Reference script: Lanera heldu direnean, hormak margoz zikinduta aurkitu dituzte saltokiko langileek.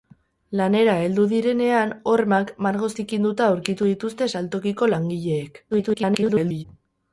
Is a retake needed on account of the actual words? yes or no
yes